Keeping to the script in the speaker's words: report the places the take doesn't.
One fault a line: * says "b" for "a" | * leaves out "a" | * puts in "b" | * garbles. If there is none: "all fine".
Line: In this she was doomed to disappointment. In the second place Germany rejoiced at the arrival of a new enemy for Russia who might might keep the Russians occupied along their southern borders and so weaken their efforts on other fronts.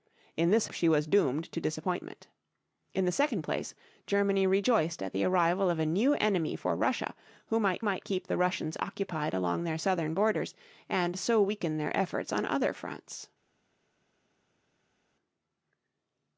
all fine